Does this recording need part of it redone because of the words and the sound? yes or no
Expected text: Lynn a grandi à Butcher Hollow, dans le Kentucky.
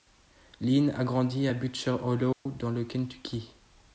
yes